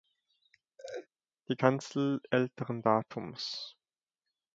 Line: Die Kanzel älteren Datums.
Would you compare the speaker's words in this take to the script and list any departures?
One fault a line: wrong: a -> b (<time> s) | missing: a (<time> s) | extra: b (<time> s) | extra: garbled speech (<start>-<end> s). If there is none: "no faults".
no faults